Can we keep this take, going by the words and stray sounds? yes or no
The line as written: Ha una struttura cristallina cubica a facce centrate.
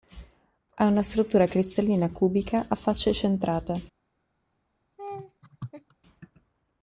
no